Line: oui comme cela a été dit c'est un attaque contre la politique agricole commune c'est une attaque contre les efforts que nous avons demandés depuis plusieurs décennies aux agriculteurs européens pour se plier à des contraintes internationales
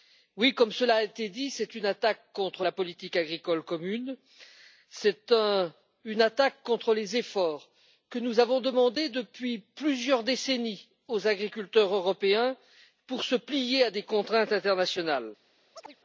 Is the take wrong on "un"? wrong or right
wrong